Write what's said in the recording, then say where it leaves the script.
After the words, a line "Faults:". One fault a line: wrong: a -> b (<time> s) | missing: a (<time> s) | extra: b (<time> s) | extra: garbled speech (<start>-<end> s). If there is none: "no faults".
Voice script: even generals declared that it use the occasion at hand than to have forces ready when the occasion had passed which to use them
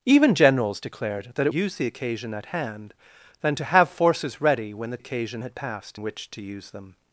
even generals declared that it use the occasion at hand than to have forces ready when the occasion had passed which to use them
Faults:
no faults